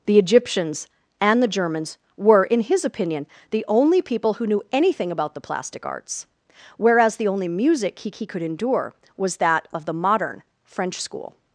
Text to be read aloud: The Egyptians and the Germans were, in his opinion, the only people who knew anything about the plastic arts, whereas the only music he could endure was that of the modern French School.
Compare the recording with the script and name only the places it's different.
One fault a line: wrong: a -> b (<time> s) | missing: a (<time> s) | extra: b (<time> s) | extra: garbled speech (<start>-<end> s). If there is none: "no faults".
extra: he (8.1 s)